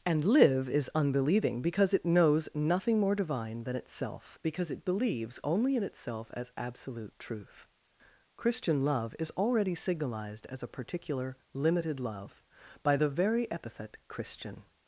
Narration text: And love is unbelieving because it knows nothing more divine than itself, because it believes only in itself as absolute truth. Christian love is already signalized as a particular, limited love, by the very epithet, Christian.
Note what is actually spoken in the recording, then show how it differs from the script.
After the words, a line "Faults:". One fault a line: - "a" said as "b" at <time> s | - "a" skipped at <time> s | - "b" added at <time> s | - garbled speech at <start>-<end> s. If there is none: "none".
And live is unbelieving because it knows nothing more divine than itself, because it believes only in itself as absolute truth. Christian love is already signalized as a particular, limited love, by the very epithet, Christian.
Faults:
- "love" said as "live" at 0.2 s